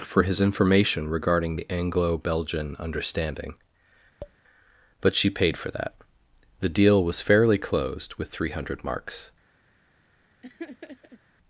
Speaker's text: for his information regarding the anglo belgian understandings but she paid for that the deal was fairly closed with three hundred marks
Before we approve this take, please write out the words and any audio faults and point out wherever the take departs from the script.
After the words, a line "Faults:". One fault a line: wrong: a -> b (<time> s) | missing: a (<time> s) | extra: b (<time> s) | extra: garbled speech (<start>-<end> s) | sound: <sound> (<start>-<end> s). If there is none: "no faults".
for his information regarding the anglo belgian understanding but she paid for that the deal was fairly closed with three hundred marks
Faults:
wrong: understandings -> understanding (2.8 s)
sound: tap (4.2-4.4 s)
sound: laugh (10.4-11.2 s)